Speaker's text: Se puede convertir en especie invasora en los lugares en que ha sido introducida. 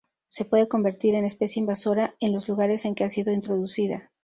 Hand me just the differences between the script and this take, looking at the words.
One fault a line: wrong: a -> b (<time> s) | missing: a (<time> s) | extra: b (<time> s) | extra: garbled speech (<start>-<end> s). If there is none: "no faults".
no faults